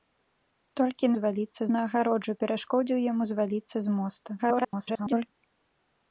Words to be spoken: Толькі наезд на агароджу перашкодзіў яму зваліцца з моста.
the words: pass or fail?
fail